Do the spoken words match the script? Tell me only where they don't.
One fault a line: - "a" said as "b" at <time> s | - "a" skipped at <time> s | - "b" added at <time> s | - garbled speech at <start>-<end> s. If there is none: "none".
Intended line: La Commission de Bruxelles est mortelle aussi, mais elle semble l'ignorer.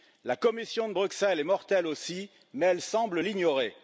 none